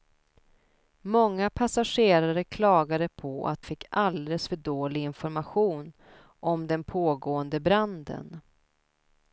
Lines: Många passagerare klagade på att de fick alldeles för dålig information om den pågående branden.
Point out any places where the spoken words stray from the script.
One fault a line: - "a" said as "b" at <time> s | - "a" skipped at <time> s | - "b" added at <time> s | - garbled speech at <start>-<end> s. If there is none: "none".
- "de" skipped at 3.6 s